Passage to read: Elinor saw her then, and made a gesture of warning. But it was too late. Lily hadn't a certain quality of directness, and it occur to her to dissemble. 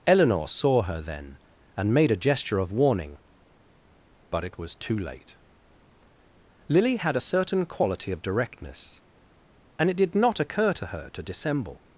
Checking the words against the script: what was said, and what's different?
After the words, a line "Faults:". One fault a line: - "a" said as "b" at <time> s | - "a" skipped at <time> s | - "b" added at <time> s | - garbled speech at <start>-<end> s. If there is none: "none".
Elinor saw her then, and made a gesture of warning. But it was too late. Lily had a certain quality of directness, and it did not occur to her to dissemble.
Faults:
- "hadn't" said as "had" at 7.0 s
- "did not" added at 10.0 s